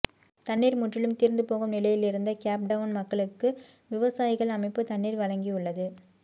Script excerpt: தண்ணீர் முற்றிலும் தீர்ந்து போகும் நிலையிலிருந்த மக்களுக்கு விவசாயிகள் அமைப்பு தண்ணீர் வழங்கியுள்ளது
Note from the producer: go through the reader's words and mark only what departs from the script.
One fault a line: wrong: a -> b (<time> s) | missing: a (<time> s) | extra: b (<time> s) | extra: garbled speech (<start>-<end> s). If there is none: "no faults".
extra: கேப் டவுன் (2.4 s)